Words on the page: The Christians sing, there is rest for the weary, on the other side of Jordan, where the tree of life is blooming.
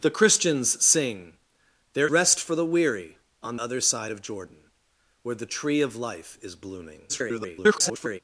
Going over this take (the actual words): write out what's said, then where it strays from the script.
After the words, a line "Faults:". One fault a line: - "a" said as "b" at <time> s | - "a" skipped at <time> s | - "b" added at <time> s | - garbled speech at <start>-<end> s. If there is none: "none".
The Christians sing, there rest for the weary, on other side of Jordan, where the tree of life is blooming. [garbled]
Faults:
- "is" skipped at 2.1 s
- "the" skipped at 3.6 s
- garbled speech at 7.1-8.2 s